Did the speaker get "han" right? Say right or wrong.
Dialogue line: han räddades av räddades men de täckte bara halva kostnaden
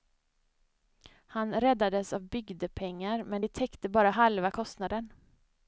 right